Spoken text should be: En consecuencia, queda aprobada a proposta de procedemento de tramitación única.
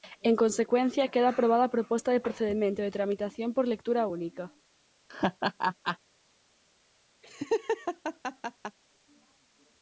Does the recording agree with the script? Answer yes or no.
no